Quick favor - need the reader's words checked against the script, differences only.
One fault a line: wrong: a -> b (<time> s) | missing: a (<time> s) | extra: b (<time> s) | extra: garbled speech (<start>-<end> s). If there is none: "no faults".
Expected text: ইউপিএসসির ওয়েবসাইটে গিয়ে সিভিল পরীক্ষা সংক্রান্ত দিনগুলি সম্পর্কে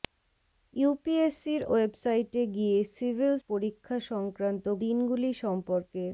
no faults